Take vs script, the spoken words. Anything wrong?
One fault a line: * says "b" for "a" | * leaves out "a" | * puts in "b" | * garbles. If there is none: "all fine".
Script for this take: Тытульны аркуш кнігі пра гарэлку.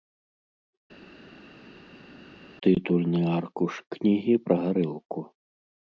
all fine